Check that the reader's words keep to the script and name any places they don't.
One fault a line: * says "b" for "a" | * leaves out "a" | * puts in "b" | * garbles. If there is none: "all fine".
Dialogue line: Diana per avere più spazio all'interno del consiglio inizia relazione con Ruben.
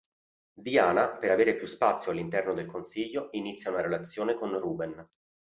* puts in "una"